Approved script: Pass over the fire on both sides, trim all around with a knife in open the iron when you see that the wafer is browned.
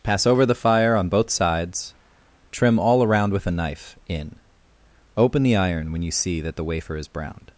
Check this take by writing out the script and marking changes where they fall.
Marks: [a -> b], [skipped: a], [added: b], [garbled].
Pass over the fire on both sides, trim all around with a knife in open the iron when you see that the wafer is browned.